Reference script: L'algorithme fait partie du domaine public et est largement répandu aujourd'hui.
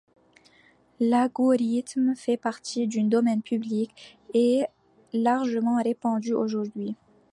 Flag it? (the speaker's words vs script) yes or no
no